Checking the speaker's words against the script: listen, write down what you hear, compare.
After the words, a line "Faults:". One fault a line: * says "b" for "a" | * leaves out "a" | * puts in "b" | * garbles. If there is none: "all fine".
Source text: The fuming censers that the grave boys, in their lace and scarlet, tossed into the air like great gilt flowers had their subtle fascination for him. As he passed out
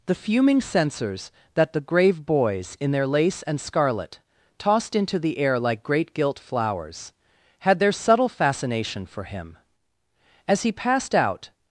The fuming censers that the grave boys, in their lace and scarlet, tossed into the air like great gilt flowers had their subtle fascination for him. As he passed out
Faults:
all fine